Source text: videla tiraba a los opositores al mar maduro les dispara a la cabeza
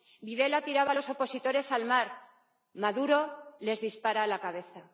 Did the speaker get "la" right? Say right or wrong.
right